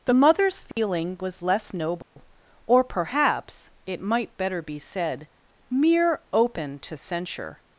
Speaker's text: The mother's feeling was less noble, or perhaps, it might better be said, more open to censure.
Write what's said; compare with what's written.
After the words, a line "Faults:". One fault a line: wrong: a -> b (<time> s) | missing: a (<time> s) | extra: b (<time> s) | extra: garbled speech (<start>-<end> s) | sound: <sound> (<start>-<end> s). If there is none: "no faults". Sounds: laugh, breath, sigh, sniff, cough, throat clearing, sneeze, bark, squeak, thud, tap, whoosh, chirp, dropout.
The mother's feeling was less noble, or perhaps, it might better be said, mere open to censure.
Faults:
sound: dropout (0.7-0.8 s)
sound: dropout (2.0-2.2 s)
wrong: more -> mere (5.7 s)